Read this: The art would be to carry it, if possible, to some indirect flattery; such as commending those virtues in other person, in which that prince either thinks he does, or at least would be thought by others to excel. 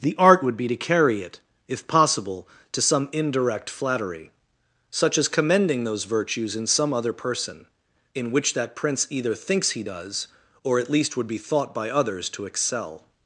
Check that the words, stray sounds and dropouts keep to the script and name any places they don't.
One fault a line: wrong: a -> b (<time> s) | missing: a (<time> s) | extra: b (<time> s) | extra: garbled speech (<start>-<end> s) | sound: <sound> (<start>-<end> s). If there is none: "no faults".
extra: some (6.7 s)